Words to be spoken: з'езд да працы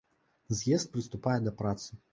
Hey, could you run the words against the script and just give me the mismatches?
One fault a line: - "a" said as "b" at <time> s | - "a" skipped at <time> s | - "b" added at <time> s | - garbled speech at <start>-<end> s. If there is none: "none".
- "прыступае" added at 1.0 s